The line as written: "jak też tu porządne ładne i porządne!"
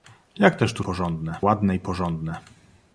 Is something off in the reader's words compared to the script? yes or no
no